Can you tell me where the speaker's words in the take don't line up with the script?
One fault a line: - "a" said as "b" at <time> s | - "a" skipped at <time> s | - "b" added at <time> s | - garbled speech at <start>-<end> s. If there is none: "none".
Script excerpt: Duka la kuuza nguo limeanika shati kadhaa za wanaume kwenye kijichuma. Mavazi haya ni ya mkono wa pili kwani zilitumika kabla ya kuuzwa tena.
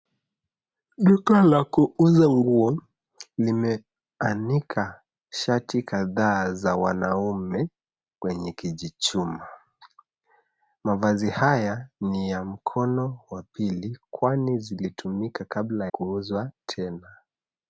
- "ya" skipped at 15.9 s